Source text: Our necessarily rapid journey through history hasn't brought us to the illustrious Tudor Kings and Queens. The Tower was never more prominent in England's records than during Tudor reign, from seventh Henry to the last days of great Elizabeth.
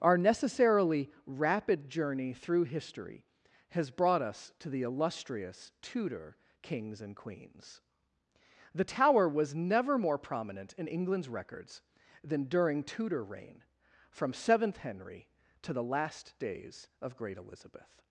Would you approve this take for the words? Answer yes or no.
no